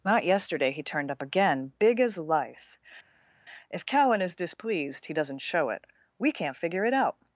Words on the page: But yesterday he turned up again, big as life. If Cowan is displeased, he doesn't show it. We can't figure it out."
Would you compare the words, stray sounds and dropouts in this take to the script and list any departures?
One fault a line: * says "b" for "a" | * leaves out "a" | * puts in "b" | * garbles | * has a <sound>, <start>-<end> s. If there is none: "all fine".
* says "Not" for "But"